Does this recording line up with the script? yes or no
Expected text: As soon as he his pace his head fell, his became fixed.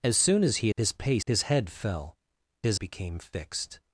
yes